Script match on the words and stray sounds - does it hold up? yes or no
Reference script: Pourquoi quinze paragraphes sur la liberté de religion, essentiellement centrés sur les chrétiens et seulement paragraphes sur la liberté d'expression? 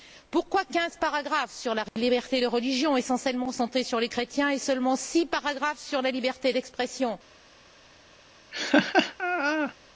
no